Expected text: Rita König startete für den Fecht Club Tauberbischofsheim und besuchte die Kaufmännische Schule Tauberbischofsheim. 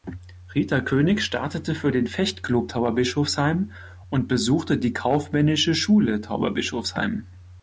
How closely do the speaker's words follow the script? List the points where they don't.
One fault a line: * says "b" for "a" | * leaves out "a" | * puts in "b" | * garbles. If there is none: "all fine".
all fine